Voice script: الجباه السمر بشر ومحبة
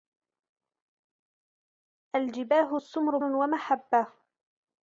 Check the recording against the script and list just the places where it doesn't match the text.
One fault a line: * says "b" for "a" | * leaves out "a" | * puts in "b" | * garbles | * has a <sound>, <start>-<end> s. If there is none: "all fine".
* leaves out "بشر"